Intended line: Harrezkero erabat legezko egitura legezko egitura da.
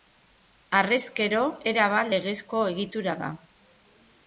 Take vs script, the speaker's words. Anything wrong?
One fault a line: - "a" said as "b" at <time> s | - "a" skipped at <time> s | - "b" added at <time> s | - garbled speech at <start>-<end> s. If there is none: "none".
- "legezko egitura" skipped at 3.2 s